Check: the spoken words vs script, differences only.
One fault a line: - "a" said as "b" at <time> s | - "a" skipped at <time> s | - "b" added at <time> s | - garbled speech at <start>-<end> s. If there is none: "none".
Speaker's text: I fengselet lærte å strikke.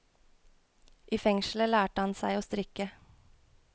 - "han seg" added at 2.0 s